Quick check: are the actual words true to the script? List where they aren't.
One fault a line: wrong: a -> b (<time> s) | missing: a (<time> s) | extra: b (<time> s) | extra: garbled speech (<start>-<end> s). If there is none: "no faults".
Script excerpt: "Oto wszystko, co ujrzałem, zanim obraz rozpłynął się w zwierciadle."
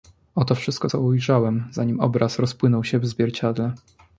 no faults